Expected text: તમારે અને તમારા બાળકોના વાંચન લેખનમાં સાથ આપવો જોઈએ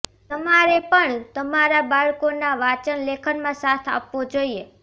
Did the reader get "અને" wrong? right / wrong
wrong